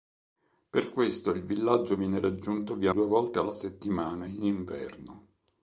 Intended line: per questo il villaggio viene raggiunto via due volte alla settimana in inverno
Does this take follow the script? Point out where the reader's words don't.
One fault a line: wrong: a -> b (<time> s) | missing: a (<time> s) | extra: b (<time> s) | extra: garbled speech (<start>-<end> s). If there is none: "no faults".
no faults